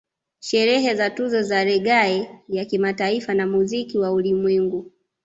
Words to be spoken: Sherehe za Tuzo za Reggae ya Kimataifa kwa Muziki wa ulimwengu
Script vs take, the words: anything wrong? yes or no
yes